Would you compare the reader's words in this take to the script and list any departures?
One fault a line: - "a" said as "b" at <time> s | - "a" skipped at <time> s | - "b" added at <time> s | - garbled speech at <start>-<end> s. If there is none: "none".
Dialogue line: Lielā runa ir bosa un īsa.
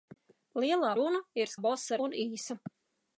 none